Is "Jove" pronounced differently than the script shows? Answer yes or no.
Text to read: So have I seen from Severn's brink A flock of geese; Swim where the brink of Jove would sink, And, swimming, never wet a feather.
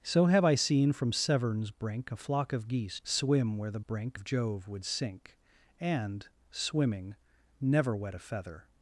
no